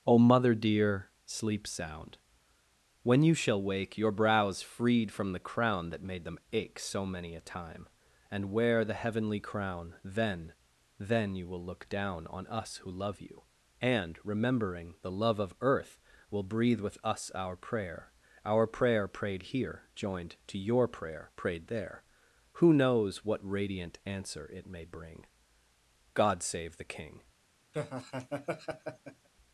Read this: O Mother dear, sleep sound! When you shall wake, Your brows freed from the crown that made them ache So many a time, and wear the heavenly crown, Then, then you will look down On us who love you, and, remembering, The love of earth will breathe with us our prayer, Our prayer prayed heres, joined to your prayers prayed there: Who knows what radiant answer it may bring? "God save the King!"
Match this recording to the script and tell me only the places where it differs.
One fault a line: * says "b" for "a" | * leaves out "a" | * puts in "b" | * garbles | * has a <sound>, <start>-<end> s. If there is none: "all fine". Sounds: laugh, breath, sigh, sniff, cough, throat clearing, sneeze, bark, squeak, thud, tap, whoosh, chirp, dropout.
* says "here" for "heres"
* says "prayer" for "prayers"
* has a laugh, 27.7-29.3 s